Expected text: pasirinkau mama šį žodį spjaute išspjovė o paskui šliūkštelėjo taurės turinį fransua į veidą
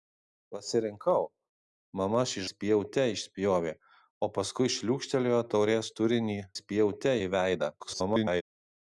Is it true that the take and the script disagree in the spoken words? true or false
true